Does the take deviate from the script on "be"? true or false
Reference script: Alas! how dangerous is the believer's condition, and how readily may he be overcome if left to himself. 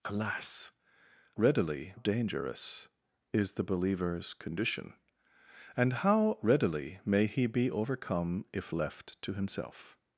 false